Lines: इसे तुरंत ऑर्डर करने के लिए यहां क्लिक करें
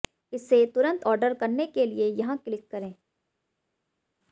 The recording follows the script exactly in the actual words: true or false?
true